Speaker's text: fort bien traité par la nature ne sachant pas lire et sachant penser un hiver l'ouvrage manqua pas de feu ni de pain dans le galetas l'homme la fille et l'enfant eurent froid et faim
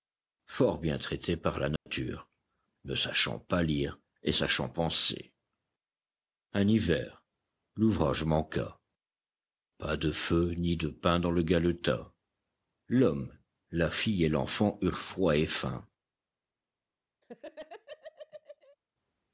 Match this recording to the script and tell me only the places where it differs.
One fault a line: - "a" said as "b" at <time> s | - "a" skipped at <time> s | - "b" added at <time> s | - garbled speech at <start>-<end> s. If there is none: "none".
none